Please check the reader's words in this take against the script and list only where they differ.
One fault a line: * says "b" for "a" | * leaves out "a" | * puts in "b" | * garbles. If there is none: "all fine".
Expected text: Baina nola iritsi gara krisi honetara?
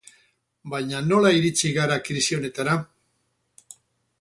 all fine